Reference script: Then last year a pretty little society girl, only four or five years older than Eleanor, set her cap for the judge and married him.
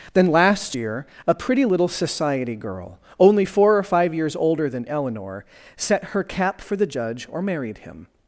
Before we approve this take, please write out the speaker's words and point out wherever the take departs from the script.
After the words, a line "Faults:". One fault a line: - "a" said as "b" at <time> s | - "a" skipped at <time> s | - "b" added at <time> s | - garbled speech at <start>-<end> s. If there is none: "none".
Then last year a pretty little society girl, only four or five years older than Eleanor, set her cap for the judge or married him.
Faults:
- "and" said as "or" at 7.3 s